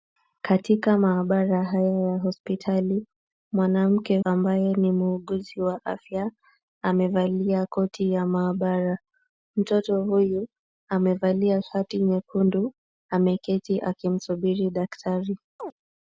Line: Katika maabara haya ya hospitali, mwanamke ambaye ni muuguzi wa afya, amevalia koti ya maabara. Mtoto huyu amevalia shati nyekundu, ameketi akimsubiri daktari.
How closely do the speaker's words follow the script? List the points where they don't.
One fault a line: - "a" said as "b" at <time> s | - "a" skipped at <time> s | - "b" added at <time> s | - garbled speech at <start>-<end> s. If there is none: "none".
none